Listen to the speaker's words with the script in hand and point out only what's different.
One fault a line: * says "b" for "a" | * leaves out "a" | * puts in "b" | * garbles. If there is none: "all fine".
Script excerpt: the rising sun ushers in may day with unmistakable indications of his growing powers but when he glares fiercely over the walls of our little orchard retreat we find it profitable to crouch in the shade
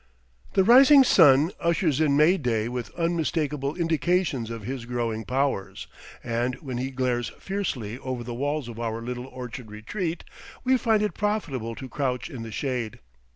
* says "and" for "but"